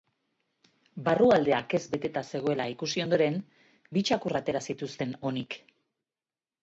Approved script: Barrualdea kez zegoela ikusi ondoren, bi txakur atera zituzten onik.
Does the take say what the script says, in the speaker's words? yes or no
no